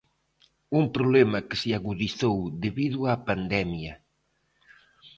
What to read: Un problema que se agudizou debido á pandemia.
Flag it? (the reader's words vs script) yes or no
no